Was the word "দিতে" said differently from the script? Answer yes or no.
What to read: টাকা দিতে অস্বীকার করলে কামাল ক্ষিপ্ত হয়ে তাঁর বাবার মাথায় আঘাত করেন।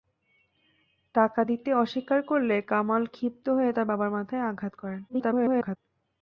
no